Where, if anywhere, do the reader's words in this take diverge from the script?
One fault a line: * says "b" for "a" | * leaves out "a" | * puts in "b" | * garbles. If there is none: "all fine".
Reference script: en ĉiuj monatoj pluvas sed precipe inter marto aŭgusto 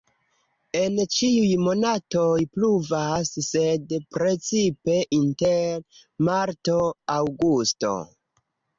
all fine